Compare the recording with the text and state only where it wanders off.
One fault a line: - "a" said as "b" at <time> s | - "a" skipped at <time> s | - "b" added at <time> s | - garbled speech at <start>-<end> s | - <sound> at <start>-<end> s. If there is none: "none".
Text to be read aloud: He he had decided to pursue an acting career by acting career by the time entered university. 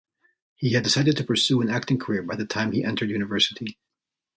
- "he" skipped at 0.7 s
- "acting career by" skipped at 2.4 s
- "he" added at 2.7 s